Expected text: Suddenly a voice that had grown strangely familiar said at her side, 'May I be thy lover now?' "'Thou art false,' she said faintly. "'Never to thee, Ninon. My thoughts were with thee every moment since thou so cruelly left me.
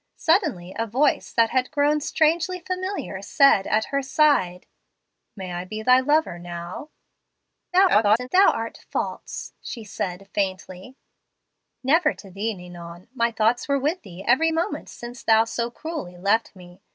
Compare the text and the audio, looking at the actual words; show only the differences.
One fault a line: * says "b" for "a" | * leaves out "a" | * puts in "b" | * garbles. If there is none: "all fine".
* garbles